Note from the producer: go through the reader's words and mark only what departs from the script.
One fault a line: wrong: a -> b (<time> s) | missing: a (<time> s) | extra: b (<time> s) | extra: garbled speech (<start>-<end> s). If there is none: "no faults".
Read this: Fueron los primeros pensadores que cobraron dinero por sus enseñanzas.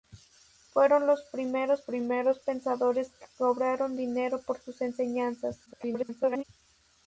extra: primeros (1.9 s)
extra: garbled speech (5.7-6.4 s)